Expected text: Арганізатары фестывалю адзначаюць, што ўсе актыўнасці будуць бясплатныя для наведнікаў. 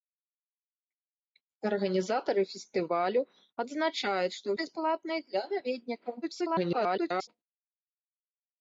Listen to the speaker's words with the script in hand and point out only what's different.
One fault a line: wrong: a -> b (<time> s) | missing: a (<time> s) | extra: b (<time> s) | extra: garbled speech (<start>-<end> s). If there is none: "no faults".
missing: ўсе актыўнасці будуць (4.5 s)
extra: garbled speech (6.2-7.3 s)